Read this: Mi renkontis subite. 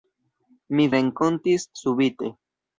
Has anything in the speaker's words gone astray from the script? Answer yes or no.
no